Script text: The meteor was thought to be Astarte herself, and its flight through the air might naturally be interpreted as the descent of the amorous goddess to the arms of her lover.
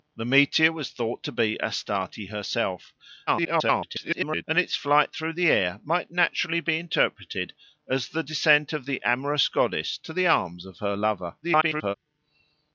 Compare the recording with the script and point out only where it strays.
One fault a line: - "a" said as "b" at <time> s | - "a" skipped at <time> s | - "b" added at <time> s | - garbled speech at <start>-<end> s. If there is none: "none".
- garbled speech at 3.3-4.4 s
- garbled speech at 11.4-11.9 s